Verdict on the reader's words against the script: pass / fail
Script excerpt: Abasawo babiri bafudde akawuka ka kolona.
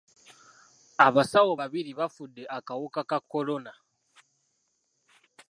pass